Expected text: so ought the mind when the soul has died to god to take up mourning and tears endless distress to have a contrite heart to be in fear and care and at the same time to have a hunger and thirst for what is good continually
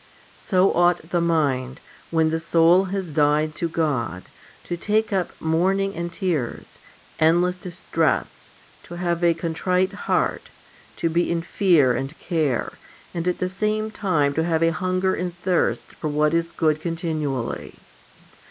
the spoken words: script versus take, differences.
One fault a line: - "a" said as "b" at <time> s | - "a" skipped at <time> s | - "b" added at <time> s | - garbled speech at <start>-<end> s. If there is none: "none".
none